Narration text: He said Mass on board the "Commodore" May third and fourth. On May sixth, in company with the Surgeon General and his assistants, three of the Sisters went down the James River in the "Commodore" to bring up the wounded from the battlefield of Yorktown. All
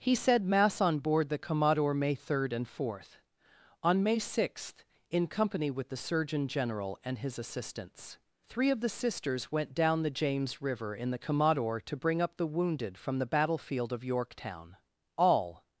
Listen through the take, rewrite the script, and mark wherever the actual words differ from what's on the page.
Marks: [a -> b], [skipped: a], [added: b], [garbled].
He said Mass on board the "Commodore" May third and fourth. On May sixth, in company with the Surgeon General and his assistants, three of the Sisters went down the James River in the "Commodore" to bring up the wounded from the battlefield of Yorktown. All